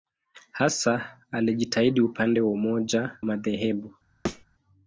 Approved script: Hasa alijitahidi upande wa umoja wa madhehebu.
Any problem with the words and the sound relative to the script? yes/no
yes